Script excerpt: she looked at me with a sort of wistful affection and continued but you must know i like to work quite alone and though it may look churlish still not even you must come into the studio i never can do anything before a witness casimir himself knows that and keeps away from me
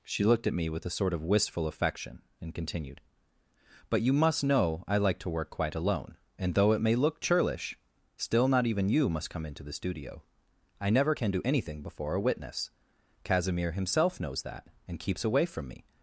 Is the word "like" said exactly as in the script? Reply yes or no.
yes